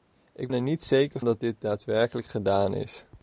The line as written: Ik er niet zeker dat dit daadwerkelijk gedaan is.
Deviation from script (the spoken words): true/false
false